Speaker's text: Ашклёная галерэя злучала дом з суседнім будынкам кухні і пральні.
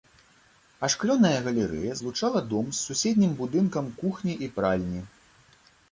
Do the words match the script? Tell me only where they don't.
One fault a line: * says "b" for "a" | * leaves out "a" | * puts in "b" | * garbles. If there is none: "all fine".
all fine